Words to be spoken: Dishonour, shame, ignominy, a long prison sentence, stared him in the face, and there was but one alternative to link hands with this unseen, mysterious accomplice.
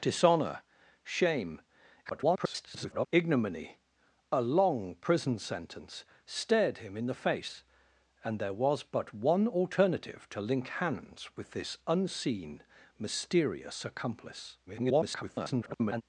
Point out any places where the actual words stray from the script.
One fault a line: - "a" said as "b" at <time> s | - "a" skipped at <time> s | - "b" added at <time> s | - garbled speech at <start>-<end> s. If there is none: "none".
- garbled speech at 2.1-3.1 s
- garbled speech at 14.7-16.0 s